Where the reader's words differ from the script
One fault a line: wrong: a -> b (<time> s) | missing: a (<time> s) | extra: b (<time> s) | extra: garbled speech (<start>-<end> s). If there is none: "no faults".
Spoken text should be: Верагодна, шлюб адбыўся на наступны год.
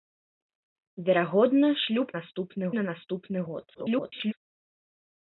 wrong: адбыўся -> наступны (2.2 s)
extra: garbled speech (3.7-4.3 s)